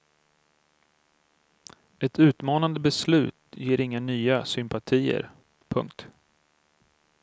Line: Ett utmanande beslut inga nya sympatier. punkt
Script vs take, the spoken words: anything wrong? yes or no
yes